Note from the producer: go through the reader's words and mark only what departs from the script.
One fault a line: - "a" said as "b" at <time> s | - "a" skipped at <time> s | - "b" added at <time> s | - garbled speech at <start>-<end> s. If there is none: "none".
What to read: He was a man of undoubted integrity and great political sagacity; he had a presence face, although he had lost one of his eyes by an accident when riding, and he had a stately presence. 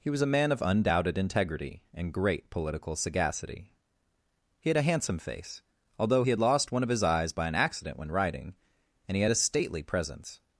- "presence" said as "handsome" at 4.8 s